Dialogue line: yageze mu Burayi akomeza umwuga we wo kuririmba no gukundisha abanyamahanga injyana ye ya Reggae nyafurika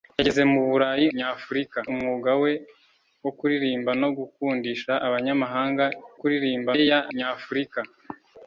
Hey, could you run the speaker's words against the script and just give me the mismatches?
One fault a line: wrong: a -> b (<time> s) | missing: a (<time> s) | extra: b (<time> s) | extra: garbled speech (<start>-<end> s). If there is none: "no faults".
wrong: akomeza -> nyafurika (1.2 s)
wrong: injyana -> kuririmba (6.2 s)
missing: Reggae (7.0 s)